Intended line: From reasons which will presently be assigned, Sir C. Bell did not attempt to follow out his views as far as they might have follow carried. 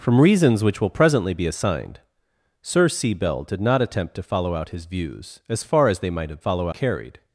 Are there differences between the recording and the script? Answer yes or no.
no